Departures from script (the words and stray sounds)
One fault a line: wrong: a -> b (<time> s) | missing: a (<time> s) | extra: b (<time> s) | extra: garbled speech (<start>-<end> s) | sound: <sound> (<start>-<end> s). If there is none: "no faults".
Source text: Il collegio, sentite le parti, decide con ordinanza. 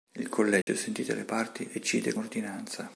sound: dropout (0.6-0.7 s)
missing: con (2.1 s)